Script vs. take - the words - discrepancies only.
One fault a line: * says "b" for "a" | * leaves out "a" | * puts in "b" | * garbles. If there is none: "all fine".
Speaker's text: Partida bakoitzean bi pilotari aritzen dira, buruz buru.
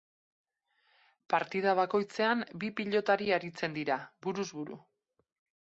all fine